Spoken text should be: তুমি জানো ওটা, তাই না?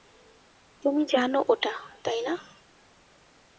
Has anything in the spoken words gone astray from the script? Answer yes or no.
no